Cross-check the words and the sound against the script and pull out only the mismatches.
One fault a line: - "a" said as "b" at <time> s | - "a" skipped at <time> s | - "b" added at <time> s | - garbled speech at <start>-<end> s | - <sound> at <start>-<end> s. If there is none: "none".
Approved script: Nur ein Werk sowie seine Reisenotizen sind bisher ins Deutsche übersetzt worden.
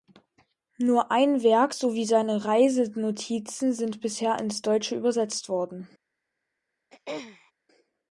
- throat clearing at 6.9-7.5 s